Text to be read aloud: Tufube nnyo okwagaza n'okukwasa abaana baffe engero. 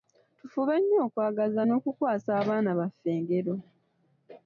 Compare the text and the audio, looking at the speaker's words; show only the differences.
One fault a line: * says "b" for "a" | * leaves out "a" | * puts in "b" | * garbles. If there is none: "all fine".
all fine